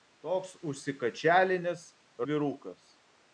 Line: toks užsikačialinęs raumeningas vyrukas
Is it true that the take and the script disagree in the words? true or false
true